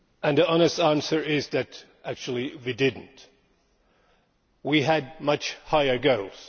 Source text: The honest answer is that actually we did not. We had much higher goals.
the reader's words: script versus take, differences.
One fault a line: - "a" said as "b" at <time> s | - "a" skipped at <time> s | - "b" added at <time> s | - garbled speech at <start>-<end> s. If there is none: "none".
none